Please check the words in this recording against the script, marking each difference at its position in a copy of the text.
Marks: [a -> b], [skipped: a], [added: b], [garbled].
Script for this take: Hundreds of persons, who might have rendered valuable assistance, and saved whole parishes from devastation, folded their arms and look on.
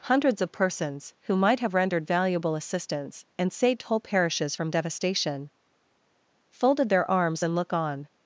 Hundreds of persons, who might have rendered valuable assistance, and saved whole parishes from devastation, folded their arms and look on.